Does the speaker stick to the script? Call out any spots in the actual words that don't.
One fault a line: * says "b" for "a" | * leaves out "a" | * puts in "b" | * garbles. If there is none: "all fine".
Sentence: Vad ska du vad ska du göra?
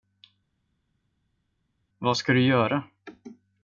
* leaves out "vad ska du"